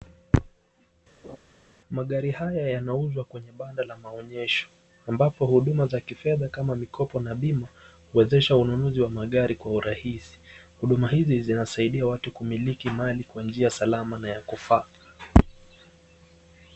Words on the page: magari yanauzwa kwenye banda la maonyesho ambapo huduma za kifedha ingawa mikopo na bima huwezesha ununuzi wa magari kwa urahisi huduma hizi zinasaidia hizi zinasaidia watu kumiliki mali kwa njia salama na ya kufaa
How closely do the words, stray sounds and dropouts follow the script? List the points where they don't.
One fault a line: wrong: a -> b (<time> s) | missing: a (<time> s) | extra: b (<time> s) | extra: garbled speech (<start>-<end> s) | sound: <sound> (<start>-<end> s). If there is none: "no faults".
sound: laugh (1.2-1.4 s)
extra: haya (2.3 s)
wrong: ingawa -> kama (6.5 s)
missing: hizi zinasaidia (12.1 s)